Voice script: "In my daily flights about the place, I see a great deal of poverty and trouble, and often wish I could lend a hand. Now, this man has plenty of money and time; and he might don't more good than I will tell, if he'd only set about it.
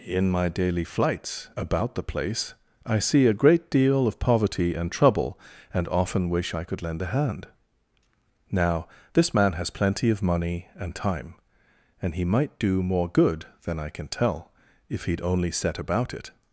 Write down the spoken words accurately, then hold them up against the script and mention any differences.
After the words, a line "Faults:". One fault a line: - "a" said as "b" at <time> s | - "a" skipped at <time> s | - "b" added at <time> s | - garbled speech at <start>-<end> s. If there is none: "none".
"In my daily flights about the place, I see a great deal of poverty and trouble, and often wish I could lend a hand. Now, this man has plenty of money and time; and he might do more good than I can tell, if he'd only set about it.
Faults:
- "don't" said as "do" at 12.6 s
- "will" said as "can" at 13.9 s